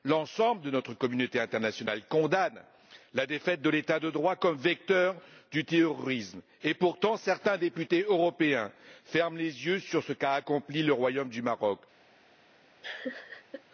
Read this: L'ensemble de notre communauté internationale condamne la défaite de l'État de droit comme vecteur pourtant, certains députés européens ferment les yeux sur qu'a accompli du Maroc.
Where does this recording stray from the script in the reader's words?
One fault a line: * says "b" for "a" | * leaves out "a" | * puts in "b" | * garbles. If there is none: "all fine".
* puts in "du terrorisme et"
* puts in "ce"
* puts in "le Royaume"